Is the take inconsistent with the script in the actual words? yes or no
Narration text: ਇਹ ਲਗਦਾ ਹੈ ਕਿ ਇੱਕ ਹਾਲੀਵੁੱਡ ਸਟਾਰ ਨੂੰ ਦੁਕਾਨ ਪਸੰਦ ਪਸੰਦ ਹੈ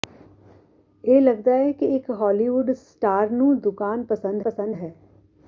no